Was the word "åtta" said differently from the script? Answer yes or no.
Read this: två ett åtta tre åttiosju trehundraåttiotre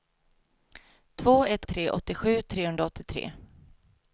yes